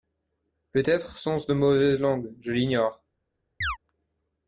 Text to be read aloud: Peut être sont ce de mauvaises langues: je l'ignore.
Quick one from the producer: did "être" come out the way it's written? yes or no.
yes